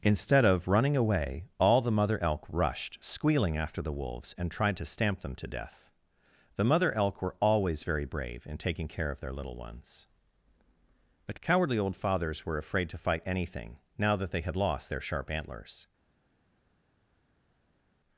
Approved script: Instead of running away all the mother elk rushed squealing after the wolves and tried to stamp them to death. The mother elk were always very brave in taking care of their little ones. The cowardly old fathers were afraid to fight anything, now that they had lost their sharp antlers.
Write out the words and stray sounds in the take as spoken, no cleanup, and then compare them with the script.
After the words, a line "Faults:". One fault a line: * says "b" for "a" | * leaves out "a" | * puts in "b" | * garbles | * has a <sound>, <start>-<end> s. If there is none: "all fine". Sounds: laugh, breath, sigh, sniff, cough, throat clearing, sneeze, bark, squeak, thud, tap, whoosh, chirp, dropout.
Instead of running away all the mother elk rushed squealing after the wolves and tried to stamp them to death. The mother elk were always very brave in taking care of their little ones. But cowardly old fathers were afraid to fight anything, now that they had lost their sharp antlers.
Faults:
* says "But" for "The"